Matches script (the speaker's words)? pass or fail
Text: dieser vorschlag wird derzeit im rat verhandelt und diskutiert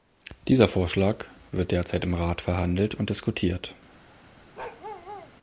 pass